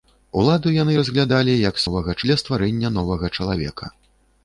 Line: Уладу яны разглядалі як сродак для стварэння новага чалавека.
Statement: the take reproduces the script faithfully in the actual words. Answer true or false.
false